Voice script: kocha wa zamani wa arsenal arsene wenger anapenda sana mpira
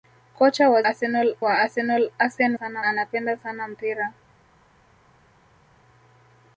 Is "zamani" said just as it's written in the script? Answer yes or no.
no